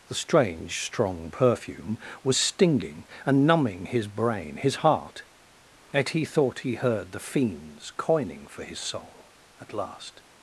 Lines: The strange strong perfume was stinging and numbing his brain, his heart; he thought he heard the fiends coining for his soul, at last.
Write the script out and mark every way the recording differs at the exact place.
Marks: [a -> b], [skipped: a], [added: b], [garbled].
The strange strong perfume was stinging and numbing his brain, his heart; [added: yet] he thought he heard the fiends coining for his soul, at last.